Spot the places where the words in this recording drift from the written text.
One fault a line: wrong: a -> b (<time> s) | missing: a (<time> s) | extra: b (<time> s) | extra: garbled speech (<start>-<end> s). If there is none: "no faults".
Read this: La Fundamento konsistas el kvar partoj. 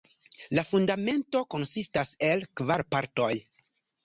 no faults